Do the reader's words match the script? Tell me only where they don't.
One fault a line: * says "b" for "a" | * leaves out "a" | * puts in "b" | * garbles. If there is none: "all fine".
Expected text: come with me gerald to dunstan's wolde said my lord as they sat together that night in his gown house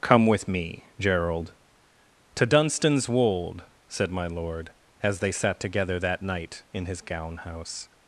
all fine